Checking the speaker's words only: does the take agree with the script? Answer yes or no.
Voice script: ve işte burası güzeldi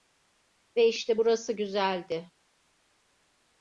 yes